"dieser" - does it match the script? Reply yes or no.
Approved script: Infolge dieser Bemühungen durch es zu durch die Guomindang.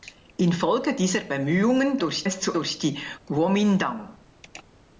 yes